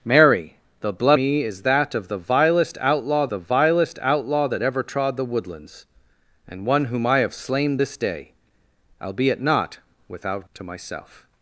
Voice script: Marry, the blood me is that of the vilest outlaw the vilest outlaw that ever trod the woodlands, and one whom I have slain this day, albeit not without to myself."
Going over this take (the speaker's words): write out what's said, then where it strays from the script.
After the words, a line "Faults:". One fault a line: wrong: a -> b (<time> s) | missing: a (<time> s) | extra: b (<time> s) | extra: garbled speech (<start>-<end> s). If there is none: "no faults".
Marry, the blood me is that of the vilest outlaw the vilest outlaw that ever trod the woodlands, and one whom I have slain this day, albeit not without to myself."
Faults:
no faults